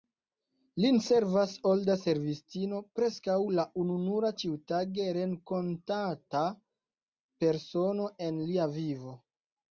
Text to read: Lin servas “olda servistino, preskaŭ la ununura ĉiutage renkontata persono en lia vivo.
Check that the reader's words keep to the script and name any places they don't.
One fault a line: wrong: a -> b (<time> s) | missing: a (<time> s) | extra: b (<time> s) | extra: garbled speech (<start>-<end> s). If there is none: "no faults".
no faults